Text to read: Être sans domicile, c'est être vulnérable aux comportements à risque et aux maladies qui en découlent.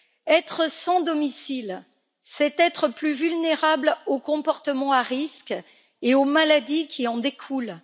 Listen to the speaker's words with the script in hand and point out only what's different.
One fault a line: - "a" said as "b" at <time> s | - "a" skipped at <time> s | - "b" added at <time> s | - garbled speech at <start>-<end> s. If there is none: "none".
- "plus" added at 2.9 s